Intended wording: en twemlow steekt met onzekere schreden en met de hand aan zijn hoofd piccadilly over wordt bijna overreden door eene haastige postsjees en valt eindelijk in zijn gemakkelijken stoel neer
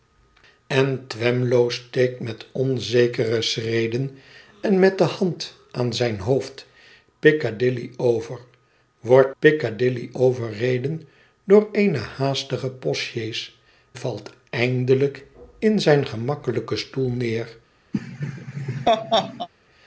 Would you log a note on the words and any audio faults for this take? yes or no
yes